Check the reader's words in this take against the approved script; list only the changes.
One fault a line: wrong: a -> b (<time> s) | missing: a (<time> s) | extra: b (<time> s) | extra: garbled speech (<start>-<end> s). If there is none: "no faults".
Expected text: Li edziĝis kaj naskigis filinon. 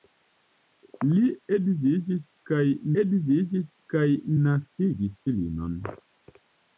extra: edziĝis kaj (3.0 s)